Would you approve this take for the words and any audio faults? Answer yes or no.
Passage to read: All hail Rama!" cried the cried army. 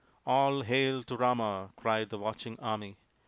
no